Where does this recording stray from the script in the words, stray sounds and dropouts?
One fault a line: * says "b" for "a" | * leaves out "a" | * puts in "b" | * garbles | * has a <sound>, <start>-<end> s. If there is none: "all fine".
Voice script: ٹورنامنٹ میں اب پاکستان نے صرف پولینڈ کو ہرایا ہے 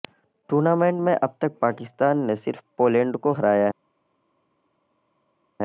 * puts in "تک"